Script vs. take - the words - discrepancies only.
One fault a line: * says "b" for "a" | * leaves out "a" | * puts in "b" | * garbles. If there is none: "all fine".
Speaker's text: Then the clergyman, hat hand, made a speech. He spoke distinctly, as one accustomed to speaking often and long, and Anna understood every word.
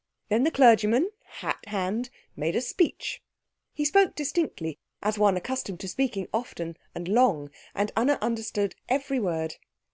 all fine